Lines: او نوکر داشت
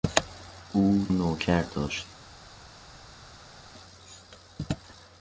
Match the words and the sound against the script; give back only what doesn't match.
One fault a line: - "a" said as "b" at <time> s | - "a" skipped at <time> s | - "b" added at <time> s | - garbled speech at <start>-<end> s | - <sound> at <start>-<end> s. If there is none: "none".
none